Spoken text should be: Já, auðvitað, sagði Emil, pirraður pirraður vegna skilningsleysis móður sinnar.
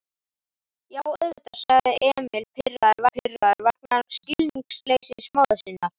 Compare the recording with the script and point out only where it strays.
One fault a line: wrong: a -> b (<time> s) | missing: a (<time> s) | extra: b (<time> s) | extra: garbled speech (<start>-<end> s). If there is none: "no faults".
no faults